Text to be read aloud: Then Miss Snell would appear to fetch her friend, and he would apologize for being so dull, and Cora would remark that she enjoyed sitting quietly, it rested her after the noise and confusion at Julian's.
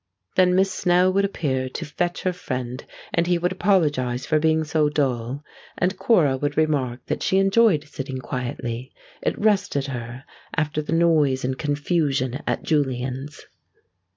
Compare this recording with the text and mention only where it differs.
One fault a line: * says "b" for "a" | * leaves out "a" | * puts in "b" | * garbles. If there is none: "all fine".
all fine